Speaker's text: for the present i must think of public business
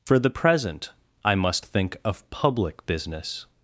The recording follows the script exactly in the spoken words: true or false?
true